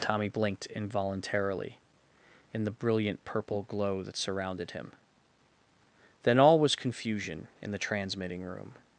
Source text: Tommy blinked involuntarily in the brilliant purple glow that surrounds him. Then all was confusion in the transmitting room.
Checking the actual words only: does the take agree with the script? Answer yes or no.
no